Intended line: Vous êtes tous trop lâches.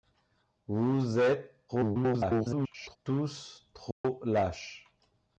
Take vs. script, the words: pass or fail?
fail